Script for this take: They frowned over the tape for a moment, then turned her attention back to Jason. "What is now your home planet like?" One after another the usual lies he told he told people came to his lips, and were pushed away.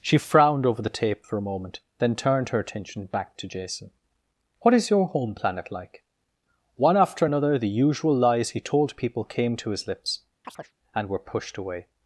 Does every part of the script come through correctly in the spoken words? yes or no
no